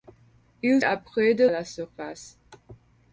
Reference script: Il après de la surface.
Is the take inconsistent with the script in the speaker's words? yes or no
no